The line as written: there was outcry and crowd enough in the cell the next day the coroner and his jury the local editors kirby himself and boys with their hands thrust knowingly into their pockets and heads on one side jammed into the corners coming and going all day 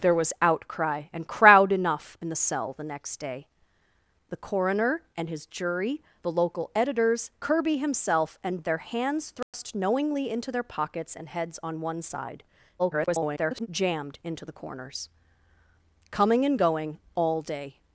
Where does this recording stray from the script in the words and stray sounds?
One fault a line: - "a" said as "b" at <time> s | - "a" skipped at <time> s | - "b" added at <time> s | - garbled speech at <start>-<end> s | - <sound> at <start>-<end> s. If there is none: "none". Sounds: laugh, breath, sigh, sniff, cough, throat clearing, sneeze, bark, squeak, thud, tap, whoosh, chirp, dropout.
- "boys with" skipped at 8.6 s
- dropout at 9.4-9.5 s
- garbled speech at 12.8-13.7 s